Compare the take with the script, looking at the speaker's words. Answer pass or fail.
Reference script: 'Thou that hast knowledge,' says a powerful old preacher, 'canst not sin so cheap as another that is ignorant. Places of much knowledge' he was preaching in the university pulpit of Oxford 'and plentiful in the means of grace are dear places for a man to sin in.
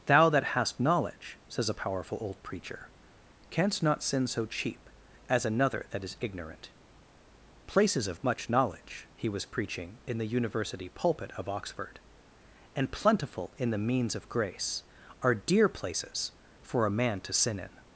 pass